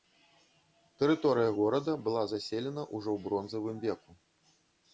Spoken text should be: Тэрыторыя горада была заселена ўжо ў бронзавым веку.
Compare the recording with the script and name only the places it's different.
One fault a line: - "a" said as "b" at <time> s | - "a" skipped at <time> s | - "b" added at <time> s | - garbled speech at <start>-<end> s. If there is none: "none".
none